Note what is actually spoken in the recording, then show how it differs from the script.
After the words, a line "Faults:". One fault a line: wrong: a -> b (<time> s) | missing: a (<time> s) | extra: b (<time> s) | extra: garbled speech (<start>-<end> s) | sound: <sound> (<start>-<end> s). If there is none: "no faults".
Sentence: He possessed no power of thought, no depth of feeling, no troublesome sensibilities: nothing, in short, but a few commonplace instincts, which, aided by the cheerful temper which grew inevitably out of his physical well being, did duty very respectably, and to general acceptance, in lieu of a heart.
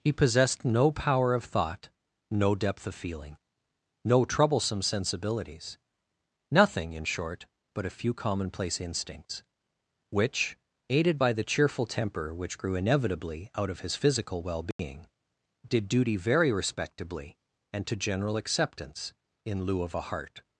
He possessed no power of thought, no depth of feeling, no troublesome sensibilities: nothing, in short, but a few commonplace instincts, which, aided by the cheerful temper which grew inevitably out of his physical well being, did duty very respectably, and to general acceptance, in lieu of a heart.
Faults:
sound: dropout (14.7-14.8 s)